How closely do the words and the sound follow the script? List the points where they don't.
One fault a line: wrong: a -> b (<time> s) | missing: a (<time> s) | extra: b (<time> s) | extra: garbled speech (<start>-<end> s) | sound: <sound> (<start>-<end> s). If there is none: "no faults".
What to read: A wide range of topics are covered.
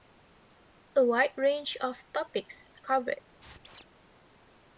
missing: are (2.7 s)
sound: squeak (3.4-3.9 s)